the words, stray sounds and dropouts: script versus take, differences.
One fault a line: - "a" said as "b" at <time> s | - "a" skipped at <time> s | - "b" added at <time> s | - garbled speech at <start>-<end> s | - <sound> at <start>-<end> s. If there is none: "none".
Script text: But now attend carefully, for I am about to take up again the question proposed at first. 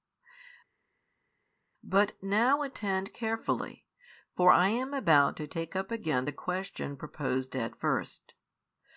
none